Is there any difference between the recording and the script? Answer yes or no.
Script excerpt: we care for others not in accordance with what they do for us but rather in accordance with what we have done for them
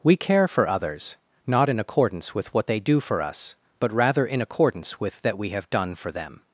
yes